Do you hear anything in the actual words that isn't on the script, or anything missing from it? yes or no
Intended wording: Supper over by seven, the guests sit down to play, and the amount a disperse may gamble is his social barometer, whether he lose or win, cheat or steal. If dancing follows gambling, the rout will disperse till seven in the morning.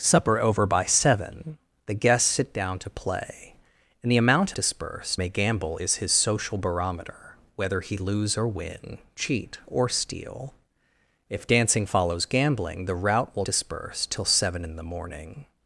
no